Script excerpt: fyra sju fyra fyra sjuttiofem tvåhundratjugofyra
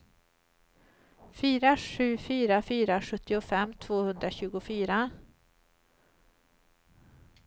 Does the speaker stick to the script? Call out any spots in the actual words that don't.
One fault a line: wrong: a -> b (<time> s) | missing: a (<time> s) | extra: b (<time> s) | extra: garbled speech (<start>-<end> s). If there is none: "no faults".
no faults